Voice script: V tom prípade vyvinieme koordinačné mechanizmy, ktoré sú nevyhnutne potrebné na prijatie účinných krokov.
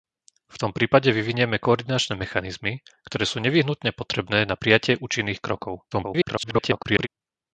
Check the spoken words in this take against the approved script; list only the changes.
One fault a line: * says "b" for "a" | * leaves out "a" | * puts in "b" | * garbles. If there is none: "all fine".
* garbles